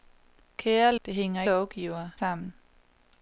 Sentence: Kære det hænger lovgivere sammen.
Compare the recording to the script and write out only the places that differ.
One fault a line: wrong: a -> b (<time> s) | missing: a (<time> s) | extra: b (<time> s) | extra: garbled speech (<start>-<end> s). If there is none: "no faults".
no faults